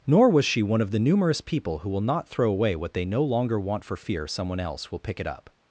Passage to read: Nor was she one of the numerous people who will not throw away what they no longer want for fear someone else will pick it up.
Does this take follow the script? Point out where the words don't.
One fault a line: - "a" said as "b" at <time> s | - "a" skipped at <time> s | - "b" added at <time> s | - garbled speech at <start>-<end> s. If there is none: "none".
none